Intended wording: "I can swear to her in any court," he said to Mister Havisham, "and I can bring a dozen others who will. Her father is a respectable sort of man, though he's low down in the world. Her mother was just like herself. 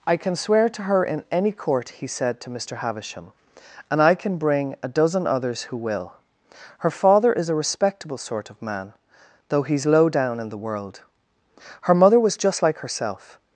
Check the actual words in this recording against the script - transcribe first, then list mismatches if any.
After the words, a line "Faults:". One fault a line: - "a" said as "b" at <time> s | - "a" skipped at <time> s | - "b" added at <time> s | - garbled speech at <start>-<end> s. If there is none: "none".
"I can swear to her in any court," he said to Mister Havisham, "and I can bring a dozen others who will. Her father is a respectable sort of man, though he's low down in the world. Her mother was just like herself.
Faults:
none